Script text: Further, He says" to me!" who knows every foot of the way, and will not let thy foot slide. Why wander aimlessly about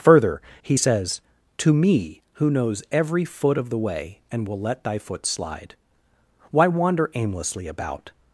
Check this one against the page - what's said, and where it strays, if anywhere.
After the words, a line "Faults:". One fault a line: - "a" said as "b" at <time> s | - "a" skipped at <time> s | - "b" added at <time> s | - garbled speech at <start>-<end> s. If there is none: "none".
Further, He says" to me!" who knows every foot of the way, and will let thy foot slide. Why wander aimlessly about
Faults:
- "not" skipped at 4.6 s